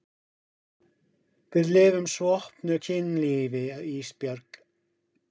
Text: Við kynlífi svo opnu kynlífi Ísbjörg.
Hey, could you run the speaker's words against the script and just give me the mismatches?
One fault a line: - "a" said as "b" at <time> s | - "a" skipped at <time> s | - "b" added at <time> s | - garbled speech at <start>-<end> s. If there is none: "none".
- "kynlífi" said as "lifum" at 1.8 s